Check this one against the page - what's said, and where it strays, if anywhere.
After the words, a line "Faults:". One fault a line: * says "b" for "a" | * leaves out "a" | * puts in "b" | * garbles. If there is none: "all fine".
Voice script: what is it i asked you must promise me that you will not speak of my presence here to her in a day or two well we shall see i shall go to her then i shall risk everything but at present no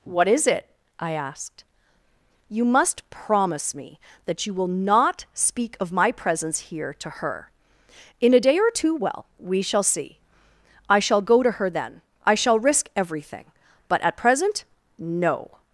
what is it i asked you must promise me that you will not speak of my presence here to her in a day or two well we shall see i shall go to her then i shall risk everything but at present no
Faults:
all fine